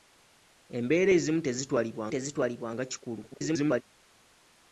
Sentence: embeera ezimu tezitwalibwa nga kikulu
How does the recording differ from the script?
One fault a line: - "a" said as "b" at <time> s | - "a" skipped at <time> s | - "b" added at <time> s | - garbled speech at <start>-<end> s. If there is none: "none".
- "tezitwalibwa" added at 2.1 s
- garbled speech at 3.3-3.8 s